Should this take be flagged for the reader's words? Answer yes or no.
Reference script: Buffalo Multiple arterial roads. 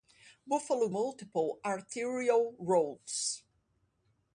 no